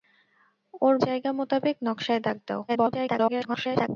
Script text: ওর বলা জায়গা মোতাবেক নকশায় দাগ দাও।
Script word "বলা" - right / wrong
wrong